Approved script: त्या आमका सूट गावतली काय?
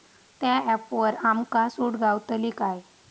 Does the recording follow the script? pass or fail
fail